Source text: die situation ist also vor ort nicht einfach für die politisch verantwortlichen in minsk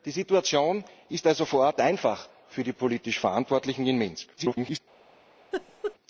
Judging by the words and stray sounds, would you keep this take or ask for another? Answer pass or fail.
fail